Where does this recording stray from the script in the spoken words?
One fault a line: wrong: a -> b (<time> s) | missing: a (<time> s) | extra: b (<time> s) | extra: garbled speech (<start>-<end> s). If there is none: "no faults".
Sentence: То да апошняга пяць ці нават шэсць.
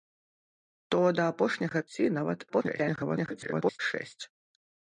missing: пяць (1.8 s)
extra: garbled speech (2.5-3.8 s)